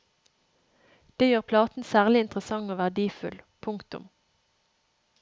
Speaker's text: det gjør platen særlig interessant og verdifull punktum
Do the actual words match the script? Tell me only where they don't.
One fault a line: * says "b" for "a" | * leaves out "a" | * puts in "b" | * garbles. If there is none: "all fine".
all fine